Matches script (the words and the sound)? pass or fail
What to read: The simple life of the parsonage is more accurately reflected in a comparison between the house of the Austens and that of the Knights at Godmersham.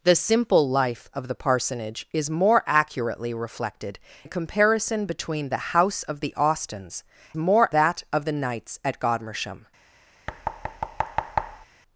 fail